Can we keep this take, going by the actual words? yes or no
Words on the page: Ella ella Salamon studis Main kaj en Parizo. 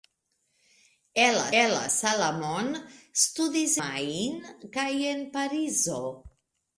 yes